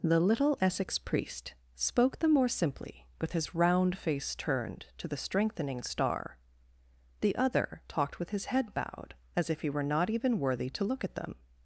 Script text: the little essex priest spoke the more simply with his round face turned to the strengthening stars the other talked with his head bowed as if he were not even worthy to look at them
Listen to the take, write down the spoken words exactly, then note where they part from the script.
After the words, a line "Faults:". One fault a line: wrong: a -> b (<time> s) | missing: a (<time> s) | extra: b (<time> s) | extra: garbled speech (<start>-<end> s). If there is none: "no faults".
the little essex priest spoke the more simply with his round face turned to the strengthening star the other talked with his head bowed as if he were not even worthy to look at them
Faults:
wrong: stars -> star (5.8 s)